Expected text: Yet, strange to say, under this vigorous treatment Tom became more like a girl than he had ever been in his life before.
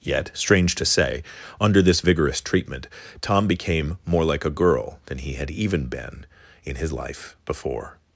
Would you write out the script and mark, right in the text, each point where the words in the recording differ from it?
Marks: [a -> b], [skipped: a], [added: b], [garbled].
Yet, strange to say, under this vigorous treatment Tom became more like a girl than he had [ever -> even] been in his life before.